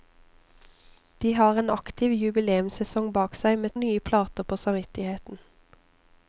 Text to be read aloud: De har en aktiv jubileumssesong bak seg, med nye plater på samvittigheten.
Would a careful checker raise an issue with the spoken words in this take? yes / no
no